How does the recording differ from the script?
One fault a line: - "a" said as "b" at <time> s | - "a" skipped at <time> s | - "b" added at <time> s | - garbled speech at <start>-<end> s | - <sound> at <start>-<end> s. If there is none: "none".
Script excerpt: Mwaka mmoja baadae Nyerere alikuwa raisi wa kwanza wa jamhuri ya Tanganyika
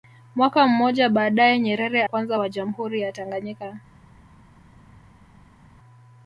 - "alikuwa raisi wa" skipped at 2.0 s